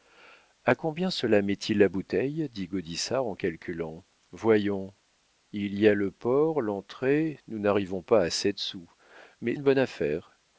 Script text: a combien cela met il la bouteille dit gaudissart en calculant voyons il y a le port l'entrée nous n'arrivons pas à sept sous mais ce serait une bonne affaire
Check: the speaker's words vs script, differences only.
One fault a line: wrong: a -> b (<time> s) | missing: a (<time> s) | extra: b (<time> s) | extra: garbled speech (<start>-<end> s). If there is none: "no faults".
missing: ce serait (9.6 s)